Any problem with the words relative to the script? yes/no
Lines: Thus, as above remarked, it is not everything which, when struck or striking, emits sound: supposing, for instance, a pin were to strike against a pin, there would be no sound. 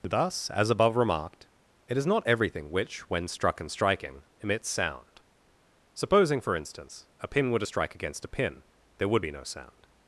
yes